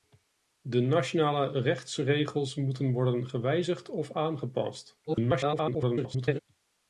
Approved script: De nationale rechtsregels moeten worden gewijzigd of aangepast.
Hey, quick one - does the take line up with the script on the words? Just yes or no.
no